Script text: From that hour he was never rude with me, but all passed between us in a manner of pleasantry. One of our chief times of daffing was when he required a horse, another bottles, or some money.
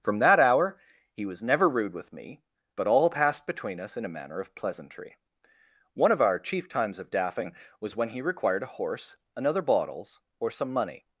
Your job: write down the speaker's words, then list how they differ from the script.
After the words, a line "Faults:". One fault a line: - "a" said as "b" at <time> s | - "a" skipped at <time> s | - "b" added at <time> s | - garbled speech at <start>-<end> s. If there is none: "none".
From that hour he was never rude with me, but all passed between us in a manner of pleasantry. One of our chief times of daffing was when he required a horse, another bottles, or some money.
Faults:
none